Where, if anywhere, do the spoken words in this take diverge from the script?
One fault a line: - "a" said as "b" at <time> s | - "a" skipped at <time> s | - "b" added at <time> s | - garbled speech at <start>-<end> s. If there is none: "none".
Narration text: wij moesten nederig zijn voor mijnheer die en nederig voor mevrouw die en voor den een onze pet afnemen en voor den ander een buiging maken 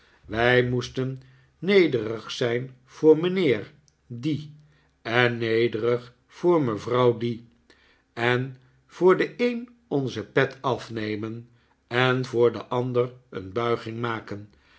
none